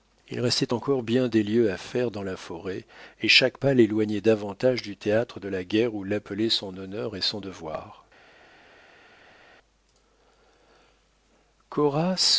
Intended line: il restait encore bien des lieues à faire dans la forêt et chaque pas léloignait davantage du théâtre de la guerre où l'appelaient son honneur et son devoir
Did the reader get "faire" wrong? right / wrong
right